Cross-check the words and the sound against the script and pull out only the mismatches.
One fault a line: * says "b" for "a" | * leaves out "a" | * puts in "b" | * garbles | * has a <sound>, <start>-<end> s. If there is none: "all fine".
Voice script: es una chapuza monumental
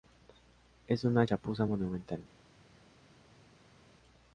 all fine